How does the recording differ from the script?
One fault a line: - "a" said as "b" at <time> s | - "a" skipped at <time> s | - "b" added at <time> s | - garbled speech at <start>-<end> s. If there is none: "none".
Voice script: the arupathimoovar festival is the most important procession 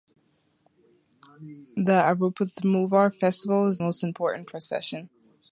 - "the" skipped at 3.8 s